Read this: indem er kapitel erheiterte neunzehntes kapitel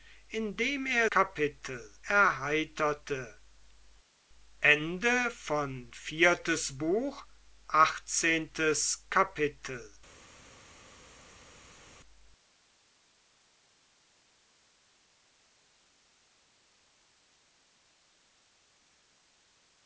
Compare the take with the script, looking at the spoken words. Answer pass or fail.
pass